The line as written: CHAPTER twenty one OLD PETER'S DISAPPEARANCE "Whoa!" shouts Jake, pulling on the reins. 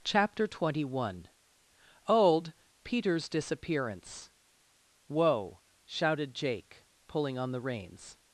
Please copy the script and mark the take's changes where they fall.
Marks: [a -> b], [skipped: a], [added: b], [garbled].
CHAPTER twenty one OLD PETER'S DISAPPEARANCE "Whoa!" [shouts -> shouted] Jake, pulling on the reins.